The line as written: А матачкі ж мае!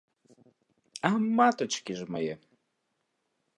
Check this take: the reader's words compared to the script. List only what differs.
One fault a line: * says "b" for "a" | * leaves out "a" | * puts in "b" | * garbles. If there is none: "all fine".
all fine